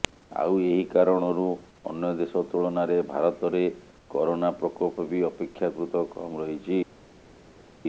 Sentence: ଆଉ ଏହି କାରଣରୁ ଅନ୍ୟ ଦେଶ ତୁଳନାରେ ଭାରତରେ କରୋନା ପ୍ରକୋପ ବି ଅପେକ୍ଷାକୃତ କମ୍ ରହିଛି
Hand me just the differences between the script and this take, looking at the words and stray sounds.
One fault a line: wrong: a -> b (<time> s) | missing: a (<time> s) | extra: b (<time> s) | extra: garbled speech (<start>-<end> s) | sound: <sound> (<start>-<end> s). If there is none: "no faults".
no faults